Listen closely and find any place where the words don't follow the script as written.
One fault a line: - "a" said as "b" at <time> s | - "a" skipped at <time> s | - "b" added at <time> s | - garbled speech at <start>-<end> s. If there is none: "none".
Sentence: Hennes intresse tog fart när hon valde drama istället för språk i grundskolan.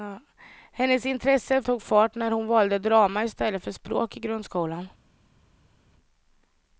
none